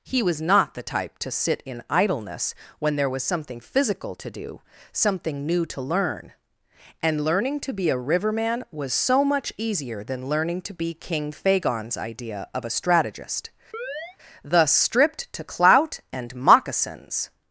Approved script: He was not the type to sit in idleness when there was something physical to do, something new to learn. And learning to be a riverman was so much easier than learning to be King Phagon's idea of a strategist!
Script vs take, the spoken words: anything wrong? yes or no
yes